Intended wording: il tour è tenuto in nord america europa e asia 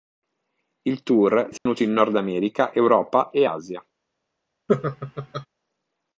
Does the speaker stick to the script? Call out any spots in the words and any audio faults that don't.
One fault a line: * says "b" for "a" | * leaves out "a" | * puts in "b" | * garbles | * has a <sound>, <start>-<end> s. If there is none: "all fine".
* has a dropout, 1.6-1.7 s
* has a laugh, 4.7-5.5 s